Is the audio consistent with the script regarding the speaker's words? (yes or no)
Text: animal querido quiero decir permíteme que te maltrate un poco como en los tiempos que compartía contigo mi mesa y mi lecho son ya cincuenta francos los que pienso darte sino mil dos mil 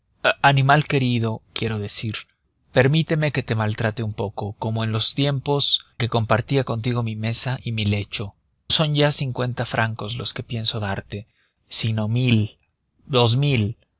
yes